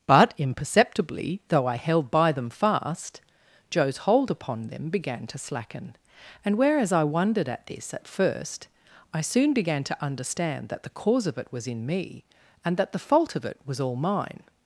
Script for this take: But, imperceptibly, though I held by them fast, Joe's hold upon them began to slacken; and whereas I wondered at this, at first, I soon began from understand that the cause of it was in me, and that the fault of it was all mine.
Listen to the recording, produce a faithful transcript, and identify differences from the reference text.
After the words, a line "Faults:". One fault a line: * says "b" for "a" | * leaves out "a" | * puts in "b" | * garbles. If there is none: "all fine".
But, imperceptibly, though I held by them fast, Joe's hold upon them began to slacken; and whereas I wondered at this, at first, I soon began to understand that the cause of it was in me, and that the fault of it was all mine.
Faults:
* says "to" for "from"